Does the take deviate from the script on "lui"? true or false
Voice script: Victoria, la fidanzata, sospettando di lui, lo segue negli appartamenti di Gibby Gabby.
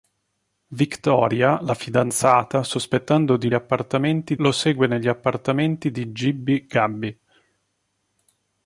true